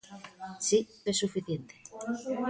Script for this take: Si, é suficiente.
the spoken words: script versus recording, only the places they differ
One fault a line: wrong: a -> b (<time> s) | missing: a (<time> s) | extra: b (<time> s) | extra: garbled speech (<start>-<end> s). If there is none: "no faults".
no faults